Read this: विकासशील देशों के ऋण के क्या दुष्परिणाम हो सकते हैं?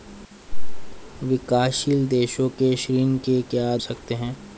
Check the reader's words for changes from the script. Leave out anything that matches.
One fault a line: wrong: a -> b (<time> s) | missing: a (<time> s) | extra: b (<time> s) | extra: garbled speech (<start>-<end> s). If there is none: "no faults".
missing: दुष्परिणाम हो (3.8 s)